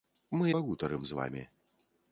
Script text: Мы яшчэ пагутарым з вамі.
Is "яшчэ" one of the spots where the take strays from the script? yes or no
yes